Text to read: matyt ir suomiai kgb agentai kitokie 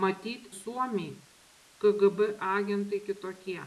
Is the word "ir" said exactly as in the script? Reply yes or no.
no